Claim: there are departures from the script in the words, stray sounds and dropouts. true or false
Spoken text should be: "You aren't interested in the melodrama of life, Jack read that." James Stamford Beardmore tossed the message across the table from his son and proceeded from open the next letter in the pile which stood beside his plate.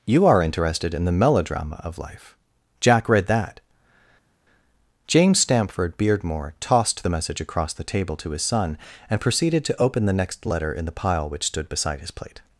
true